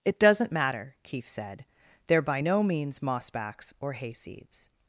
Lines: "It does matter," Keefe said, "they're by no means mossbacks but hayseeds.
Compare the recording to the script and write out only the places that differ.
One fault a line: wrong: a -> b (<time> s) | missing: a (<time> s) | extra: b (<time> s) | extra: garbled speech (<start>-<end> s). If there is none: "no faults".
wrong: does -> doesn't (0.2 s)
wrong: but -> or (3.8 s)